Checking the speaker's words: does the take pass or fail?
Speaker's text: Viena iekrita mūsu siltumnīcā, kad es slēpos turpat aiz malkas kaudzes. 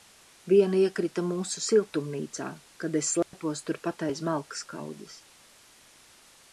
pass